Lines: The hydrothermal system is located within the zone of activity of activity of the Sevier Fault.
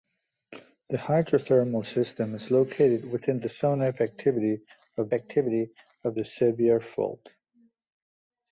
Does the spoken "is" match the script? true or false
true